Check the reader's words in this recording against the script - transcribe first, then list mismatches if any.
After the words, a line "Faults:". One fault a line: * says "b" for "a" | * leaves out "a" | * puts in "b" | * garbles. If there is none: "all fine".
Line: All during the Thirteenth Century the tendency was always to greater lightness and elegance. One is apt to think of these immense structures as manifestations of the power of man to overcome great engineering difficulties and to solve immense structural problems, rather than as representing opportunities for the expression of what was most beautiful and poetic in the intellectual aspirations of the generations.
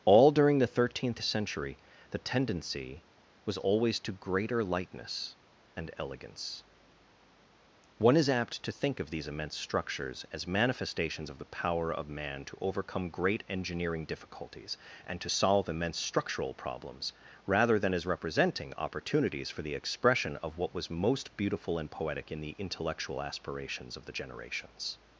All during the Thirteenth Century the tendency was always to greater lightness and elegance. One is apt to think of these immense structures as manifestations of the power of man to overcome great engineering difficulties and to solve immense structural problems, rather than as representing opportunities for the expression of what was most beautiful and poetic in the intellectual aspirations of the generations.
Faults:
all fine